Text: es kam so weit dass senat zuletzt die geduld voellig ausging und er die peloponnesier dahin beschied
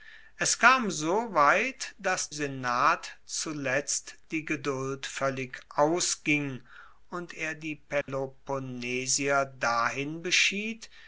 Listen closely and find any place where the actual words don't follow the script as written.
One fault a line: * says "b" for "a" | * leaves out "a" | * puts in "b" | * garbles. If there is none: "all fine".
all fine